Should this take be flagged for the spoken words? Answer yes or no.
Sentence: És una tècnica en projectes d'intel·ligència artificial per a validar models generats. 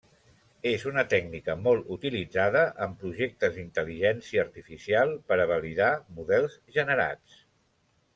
yes